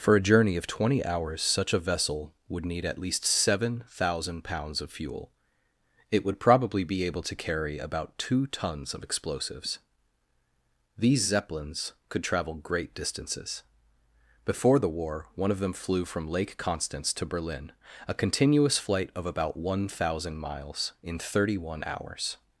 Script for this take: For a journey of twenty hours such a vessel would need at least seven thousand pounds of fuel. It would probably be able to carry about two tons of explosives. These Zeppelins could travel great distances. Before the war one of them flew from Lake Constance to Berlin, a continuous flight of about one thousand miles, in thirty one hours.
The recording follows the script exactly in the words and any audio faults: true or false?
true